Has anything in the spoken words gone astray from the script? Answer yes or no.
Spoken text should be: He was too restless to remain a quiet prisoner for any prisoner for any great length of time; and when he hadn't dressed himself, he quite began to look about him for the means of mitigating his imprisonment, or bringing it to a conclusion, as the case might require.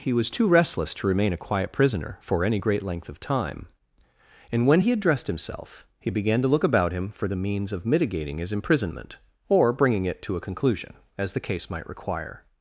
yes